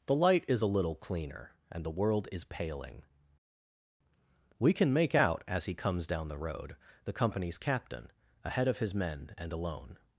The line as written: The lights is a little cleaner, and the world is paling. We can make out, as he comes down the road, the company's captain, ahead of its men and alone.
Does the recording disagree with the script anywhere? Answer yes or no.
yes